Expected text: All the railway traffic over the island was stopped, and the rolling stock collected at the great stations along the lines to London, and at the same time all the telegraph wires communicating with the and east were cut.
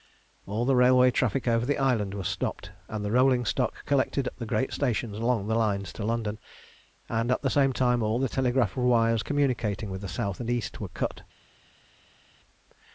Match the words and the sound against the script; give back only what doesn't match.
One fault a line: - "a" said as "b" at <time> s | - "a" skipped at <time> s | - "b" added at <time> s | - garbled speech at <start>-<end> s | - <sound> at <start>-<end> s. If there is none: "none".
- "south" added at 10.1 s